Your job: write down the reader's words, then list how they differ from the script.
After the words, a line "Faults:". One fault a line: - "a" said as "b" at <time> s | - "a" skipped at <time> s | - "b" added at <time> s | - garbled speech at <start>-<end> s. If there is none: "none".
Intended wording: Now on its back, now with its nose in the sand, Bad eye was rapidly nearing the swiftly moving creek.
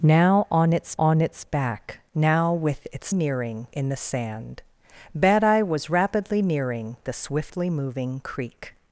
Now on its on its back, now with its nearing in the sand, Bad eye was rapidly nearing the swiftly moving creek.
Faults:
- "on its" added at 1.0 s
- "nose" said as "nearing" at 3.1 s